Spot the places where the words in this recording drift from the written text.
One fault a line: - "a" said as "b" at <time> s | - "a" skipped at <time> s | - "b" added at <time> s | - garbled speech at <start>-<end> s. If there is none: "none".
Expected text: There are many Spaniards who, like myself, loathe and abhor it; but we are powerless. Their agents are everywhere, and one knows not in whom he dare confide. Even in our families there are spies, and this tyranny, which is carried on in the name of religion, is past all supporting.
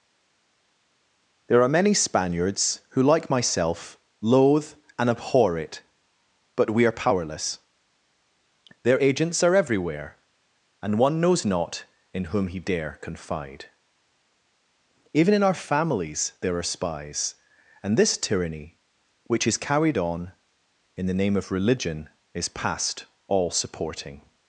none